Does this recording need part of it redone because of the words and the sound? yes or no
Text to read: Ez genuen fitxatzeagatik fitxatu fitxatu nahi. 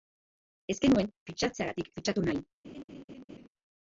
yes